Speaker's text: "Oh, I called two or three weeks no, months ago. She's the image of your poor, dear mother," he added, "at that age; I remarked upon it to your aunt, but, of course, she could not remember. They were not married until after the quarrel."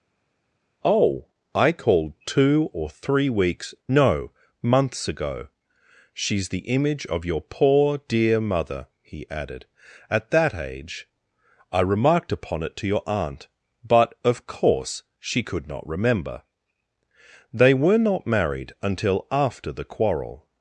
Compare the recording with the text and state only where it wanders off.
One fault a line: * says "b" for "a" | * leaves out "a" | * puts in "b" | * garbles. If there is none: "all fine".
all fine